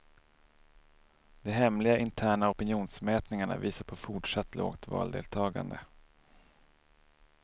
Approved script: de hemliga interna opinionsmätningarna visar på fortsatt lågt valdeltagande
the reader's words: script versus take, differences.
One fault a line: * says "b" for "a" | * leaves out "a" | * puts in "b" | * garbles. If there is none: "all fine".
all fine